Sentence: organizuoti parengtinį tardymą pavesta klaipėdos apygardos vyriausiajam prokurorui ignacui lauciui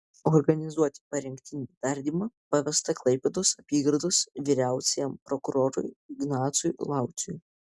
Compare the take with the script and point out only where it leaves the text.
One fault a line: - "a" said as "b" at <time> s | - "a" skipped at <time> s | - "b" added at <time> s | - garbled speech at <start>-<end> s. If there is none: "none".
none